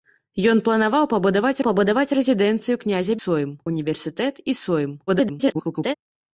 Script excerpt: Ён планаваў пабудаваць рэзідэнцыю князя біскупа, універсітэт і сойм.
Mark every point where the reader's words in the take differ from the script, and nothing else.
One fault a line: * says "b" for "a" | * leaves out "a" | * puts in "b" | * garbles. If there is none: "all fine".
* puts in "пабудаваць"
* says "сойм" for "біскупа"
* garbles